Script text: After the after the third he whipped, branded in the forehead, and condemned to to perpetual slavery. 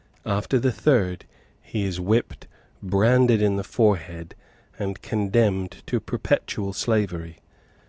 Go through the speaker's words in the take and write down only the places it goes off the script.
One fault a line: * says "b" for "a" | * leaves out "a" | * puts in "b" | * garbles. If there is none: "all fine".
* leaves out "after the"
* puts in "is"
* leaves out "to"